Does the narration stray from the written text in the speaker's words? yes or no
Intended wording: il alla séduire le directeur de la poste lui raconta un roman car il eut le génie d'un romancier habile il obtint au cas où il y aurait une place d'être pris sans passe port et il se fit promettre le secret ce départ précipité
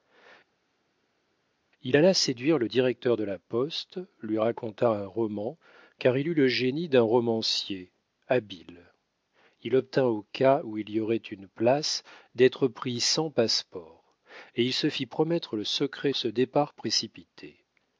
no